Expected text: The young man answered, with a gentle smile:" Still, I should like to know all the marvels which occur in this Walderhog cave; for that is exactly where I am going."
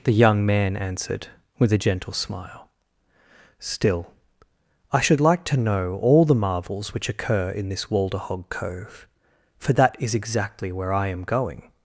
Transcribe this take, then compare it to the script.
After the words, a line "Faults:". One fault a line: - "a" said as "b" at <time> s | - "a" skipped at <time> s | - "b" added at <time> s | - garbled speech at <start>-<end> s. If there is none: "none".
The young man answered, with a gentle smile:" Still, I should like to know all the marvels which occur in this Walderhog cove; for that is exactly where I am going."
Faults:
- "cave" said as "cove" at 8.5 s